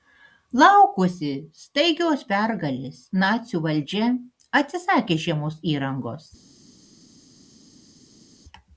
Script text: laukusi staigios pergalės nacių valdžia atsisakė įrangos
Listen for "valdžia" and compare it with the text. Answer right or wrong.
right